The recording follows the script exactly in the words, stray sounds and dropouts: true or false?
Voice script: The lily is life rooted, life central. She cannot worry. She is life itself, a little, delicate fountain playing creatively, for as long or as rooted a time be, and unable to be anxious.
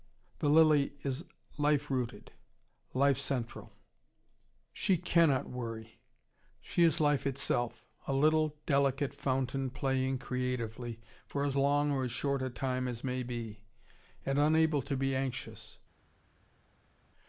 false